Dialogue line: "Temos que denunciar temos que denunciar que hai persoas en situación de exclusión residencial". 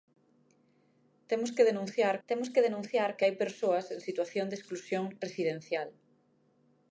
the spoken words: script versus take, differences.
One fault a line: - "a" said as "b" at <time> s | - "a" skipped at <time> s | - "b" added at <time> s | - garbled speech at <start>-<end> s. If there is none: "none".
none